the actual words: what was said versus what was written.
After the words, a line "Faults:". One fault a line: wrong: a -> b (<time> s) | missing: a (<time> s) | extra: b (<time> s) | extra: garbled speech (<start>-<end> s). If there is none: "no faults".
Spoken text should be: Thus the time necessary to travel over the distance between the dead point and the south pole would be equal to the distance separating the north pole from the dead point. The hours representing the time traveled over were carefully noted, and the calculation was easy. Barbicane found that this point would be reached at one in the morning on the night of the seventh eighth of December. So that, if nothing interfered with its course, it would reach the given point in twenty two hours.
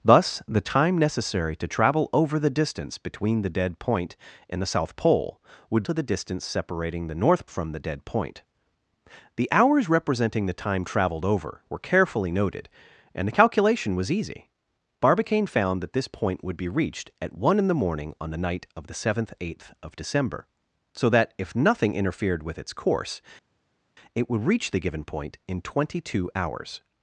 Thus the time necessary to travel over the distance between the dead point and the south pole would to the distance separating the north from the dead point. The hours representing the time traveled over were carefully noted, and the calculation was easy. Barbicane found that this point would be reached at one in the morning on the night of the seventh eighth of December. So that, if nothing interfered with its course, it would reach the given point in twenty two hours.
Faults:
missing: be equal (5.8 s)
missing: pole (7.5 s)